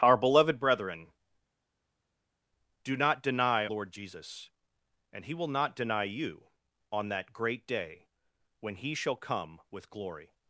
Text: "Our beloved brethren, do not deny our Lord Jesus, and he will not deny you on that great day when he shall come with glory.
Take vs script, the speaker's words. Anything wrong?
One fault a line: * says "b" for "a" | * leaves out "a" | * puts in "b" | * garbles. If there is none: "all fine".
* leaves out "our"